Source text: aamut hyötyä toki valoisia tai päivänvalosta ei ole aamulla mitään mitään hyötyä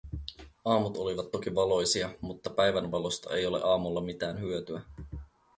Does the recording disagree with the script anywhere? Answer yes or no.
yes